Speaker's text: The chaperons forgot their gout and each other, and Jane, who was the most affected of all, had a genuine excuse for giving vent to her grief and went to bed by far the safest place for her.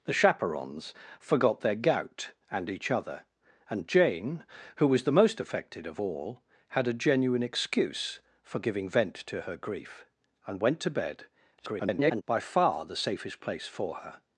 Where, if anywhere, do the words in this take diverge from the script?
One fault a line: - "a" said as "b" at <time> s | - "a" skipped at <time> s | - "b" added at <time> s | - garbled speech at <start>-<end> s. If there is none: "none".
- garbled speech at 11.6-12.2 s